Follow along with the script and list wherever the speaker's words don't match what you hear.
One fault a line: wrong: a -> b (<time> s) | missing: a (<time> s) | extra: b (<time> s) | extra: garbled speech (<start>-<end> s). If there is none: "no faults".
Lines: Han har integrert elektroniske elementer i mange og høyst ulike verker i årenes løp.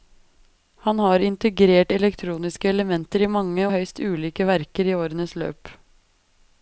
missing: og (3.7 s)